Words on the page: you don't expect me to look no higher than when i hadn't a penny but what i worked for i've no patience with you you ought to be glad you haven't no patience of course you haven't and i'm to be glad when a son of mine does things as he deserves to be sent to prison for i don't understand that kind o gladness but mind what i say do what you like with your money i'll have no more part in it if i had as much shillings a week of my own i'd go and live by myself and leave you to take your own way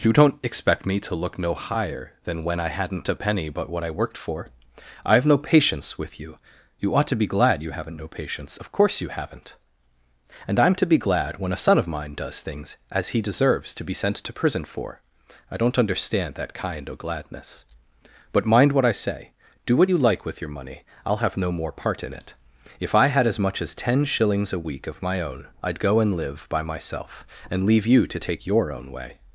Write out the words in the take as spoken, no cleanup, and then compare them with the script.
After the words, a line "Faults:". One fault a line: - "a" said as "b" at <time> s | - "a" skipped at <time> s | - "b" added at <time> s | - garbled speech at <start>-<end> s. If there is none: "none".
you don't expect me to look no higher than when i hadn't a penny but what i worked for i've no patience with you you ought to be glad you haven't no patience of course you haven't and i'm to be glad when a son of mine does things as he deserves to be sent to prison for i don't understand that kind o gladness but mind what i say do what you like with your money i'll have no more part in it if i had as much as ten shillings a week of my own i'd go and live by myself and leave you to take your own way
Faults:
- "as ten" added at 23.6 s